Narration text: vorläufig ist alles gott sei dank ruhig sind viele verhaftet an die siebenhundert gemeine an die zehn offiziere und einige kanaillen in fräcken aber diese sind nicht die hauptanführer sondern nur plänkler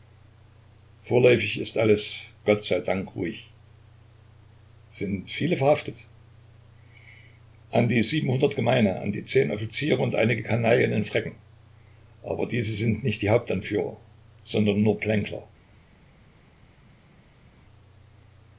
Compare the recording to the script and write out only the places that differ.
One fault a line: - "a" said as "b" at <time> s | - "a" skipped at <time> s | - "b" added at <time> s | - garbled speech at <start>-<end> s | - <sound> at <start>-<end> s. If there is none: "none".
none